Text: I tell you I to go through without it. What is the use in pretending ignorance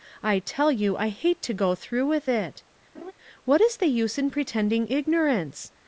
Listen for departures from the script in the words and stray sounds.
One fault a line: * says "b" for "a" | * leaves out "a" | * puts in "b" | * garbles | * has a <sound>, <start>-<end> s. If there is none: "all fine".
* puts in "hate"
* says "with" for "without"
* has a laugh, 2.9-3.1 s